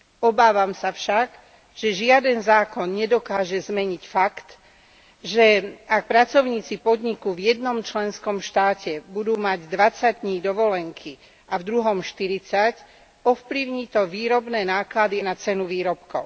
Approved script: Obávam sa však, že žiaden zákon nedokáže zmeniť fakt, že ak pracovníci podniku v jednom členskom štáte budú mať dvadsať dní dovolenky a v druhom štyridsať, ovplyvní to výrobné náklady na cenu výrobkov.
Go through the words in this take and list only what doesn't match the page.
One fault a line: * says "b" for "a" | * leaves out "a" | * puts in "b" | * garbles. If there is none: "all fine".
all fine